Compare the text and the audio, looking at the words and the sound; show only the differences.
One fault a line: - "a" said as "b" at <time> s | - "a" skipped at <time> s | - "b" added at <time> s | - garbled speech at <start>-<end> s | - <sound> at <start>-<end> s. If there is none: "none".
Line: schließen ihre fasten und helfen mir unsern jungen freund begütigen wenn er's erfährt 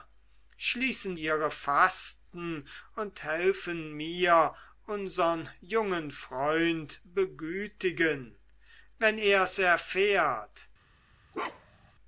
- bark at 11.3-11.9 s